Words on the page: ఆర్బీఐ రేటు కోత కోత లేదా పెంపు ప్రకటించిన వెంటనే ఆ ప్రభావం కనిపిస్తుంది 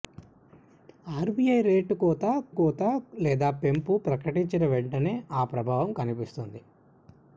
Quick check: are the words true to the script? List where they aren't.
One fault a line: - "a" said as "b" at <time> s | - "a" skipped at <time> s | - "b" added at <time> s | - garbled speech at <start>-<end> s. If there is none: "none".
none